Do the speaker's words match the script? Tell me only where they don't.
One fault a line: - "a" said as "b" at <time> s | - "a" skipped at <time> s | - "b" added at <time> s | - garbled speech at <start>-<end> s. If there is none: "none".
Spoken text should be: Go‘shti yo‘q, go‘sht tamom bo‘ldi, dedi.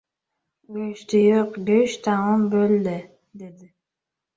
none